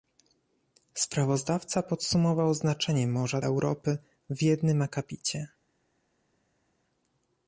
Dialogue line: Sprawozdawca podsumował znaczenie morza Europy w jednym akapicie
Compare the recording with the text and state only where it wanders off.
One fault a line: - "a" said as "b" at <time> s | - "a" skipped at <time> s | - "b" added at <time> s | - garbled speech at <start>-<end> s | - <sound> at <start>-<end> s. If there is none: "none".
none